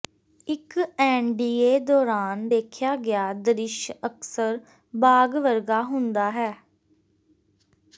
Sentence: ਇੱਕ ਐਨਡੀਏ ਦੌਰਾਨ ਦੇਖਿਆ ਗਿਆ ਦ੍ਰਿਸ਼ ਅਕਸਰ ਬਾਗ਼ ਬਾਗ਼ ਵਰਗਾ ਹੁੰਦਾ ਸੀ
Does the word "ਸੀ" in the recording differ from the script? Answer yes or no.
yes